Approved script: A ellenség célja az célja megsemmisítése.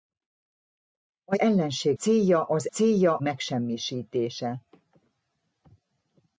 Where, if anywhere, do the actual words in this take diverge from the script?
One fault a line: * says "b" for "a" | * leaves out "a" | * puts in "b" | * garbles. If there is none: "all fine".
all fine